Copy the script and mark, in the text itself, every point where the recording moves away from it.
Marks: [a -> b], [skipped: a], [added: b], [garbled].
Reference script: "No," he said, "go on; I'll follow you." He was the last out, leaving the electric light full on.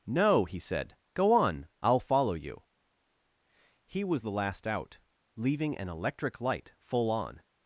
"No," he said, "go on; I'll follow you." He was the last out, leaving [the -> an] electric light full on.